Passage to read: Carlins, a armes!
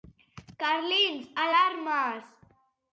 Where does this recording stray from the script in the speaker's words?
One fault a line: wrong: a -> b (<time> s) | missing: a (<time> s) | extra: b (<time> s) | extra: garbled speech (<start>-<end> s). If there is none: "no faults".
no faults